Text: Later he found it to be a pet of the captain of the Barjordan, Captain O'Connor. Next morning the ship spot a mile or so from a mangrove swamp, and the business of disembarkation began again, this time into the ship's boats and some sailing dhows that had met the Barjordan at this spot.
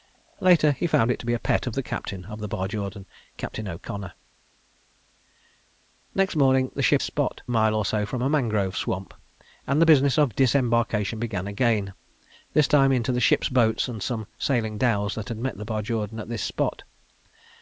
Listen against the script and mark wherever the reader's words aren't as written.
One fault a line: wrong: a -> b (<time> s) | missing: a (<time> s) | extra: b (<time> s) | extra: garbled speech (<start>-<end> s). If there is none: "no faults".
no faults